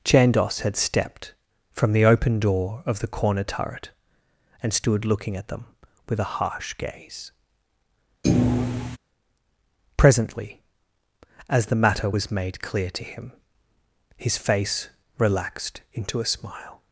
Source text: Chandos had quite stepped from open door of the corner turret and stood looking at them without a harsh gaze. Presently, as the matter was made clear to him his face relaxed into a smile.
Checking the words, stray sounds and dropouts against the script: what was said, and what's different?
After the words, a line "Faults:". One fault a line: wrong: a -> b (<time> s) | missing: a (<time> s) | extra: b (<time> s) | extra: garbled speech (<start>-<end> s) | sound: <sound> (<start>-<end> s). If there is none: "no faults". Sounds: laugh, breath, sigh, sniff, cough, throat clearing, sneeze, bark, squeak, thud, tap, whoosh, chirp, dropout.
Chandos had stepped from the open door of the corner turret and stood looking at them with a harsh gaze. Presently, as the matter was made clear to him his face relaxed into a smile.
Faults:
missing: quite (0.8 s)
extra: the (1.9 s)
wrong: without -> with (6.1 s)
sound: thud (8.2-9.0 s)